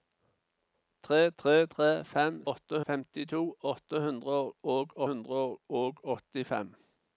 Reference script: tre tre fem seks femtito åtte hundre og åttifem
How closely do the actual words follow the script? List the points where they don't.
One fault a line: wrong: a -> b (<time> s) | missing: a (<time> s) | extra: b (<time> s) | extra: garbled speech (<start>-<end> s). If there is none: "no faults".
extra: tre (1.7 s)
wrong: seks -> åtte (2.5 s)
extra: hundre og (5.1 s)